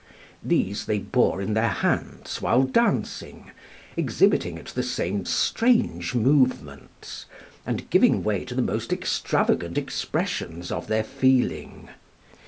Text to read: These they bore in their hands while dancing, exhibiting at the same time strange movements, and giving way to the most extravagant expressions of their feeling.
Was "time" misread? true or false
true